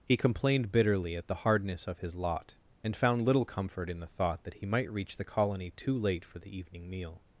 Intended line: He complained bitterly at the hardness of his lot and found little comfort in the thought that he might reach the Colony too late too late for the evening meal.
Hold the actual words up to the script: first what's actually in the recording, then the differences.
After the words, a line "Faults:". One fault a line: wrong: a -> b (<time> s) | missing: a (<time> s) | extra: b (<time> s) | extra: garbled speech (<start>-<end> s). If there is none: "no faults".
He complained bitterly at the hardness of his lot and found little comfort in the thought that he might reach the Colony too late for the evening meal.
Faults:
missing: too late (6.2 s)